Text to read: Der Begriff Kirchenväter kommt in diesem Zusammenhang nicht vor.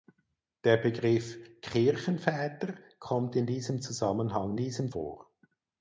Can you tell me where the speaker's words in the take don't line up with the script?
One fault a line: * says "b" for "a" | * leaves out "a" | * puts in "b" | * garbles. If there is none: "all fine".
* says "diesem" for "nicht"